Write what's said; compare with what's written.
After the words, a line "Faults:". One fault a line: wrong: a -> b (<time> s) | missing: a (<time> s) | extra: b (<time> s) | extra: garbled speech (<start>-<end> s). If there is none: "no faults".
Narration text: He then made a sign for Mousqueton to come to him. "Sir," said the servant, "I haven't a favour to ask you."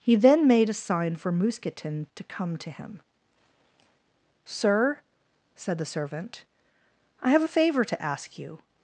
He then made a sign for Mousqueton to come to him. "Sir," said the servant, "I have a favour to ask you."
Faults:
wrong: haven't -> have (7.3 s)